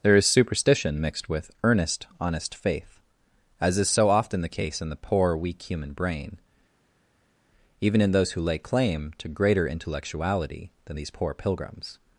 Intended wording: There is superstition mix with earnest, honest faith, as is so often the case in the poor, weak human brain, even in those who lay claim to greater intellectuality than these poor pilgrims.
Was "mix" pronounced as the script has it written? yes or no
no